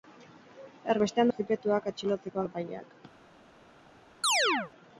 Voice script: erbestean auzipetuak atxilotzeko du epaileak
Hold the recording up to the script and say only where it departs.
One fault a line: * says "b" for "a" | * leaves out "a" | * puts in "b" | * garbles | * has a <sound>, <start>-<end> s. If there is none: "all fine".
* has a chirp, 4.2-4.7 s